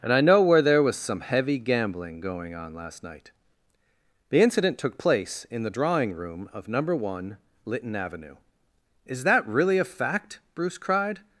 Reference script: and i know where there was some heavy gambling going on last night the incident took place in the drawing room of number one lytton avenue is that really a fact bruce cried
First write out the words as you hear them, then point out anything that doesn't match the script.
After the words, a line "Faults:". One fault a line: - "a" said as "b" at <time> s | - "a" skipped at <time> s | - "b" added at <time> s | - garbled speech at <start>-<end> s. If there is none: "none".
and i know where there was some heavy gambling going on last night the incident took place in the drawing room of number one lytton avenue is that really a fact bruce cried
Faults:
none